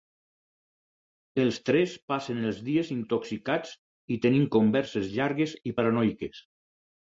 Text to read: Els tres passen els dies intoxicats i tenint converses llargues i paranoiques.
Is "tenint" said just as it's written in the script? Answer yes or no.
yes